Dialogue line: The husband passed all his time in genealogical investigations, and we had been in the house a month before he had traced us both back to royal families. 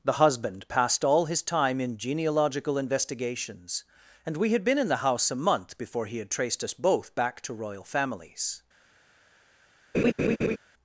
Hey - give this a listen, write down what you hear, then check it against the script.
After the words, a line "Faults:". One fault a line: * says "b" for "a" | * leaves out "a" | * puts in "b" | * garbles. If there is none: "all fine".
The husband passed all his time in genealogical investigations, and we had been in the house a month before he had traced us both back to royal families.
Faults:
all fine